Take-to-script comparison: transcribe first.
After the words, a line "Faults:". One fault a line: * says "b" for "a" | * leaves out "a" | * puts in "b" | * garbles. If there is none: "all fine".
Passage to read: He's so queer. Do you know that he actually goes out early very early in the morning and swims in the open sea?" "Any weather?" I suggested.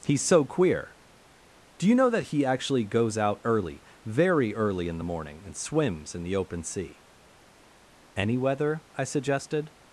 He's so queer. Do you know that he actually goes out early very early in the morning and swims in the open sea?" "Any weather?" I suggested.
Faults:
all fine